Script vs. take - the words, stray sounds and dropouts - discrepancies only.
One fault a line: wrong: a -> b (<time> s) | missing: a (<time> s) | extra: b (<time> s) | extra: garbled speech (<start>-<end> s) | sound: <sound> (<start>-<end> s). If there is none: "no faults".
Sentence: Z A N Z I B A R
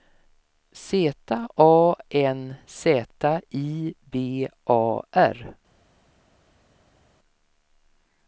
no faults